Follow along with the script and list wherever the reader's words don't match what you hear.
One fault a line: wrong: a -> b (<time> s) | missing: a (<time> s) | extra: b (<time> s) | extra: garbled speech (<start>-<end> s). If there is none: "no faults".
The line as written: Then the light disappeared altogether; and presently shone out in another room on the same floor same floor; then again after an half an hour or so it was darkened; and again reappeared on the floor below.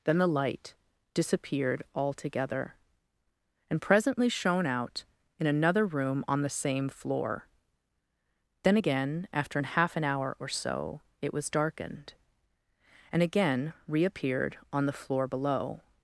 missing: same floor (7.5 s)